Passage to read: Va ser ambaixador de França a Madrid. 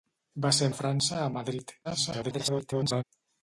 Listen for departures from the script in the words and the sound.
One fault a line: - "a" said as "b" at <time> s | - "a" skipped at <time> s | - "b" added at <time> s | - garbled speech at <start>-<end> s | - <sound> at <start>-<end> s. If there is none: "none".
- "ambaixador" skipped at 0.7 s
- garbled speech at 1.8-3.0 s